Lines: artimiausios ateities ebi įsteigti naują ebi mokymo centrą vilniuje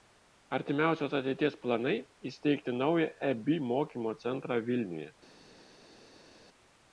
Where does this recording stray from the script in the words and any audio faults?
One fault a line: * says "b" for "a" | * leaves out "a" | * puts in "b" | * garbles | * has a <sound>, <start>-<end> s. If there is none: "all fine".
* says "planai" for "ebi"